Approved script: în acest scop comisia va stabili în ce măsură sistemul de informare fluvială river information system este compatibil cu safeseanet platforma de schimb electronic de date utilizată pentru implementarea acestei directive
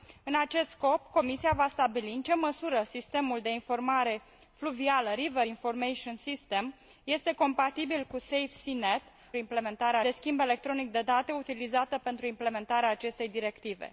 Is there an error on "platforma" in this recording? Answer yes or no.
yes